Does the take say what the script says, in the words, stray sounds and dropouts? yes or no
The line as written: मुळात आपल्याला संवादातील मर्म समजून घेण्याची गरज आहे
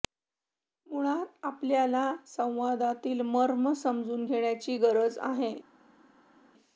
yes